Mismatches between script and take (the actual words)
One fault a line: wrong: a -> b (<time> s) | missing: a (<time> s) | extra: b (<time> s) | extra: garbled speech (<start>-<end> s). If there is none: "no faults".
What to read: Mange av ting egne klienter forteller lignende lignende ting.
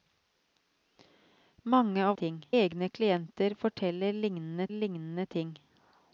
no faults